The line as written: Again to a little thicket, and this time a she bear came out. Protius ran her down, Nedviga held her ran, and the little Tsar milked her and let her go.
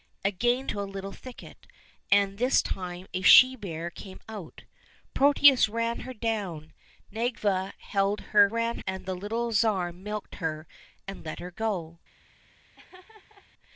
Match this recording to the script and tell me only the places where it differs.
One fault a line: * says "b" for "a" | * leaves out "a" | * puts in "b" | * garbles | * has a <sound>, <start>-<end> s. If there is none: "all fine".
* has a laugh, 12.8-13.5 s